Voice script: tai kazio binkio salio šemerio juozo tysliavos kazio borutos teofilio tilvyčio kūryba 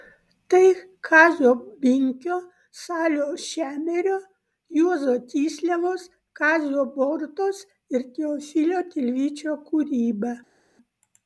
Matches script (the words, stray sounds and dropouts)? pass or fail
fail